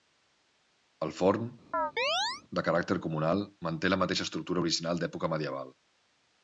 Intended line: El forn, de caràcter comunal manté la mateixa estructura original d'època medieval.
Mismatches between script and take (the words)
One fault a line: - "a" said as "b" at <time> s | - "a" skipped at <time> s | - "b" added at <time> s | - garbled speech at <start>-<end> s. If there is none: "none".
none